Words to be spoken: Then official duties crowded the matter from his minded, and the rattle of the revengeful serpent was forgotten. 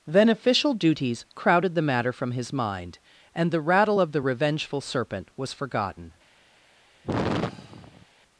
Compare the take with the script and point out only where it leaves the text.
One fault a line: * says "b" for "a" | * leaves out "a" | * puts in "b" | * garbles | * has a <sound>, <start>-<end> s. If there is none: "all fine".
* says "mind" for "minded"
* has a sigh, 7.0-8.1 s